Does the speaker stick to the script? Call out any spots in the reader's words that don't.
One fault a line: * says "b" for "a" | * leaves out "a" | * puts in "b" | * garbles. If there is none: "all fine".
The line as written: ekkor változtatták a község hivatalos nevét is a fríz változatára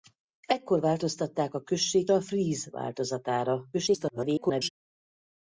* leaves out "hivatalos nevét is"
* garbles